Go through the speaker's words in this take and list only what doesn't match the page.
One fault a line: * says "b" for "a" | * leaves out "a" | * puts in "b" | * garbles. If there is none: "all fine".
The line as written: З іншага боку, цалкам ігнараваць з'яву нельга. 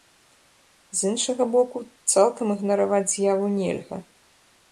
all fine